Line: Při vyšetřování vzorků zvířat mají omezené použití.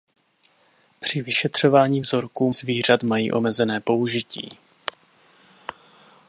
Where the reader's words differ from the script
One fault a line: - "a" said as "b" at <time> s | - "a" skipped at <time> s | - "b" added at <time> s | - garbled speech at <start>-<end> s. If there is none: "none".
none